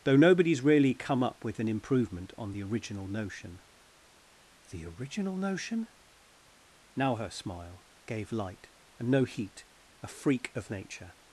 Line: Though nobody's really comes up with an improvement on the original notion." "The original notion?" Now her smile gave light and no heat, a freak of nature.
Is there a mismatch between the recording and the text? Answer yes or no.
yes